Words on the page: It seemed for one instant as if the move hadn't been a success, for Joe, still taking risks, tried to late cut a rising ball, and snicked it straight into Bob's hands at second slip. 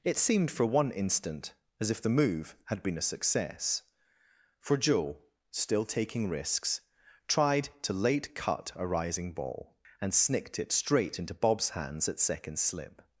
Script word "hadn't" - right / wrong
wrong